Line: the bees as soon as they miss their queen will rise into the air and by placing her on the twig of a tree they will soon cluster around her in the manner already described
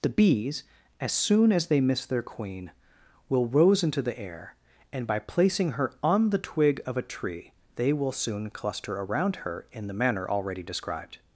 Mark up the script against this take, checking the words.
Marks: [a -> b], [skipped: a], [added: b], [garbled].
the bees as soon as they miss their queen will [rise -> rose] into the air and by placing her on the twig of a tree they will soon cluster around her in the manner already described